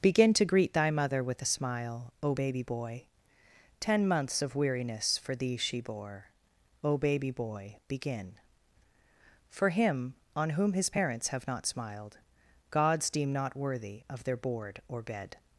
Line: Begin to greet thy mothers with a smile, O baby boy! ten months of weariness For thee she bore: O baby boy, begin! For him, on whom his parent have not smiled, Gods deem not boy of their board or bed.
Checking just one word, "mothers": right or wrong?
wrong